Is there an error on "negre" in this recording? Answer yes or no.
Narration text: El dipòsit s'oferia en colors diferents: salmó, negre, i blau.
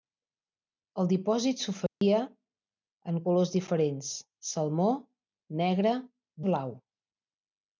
no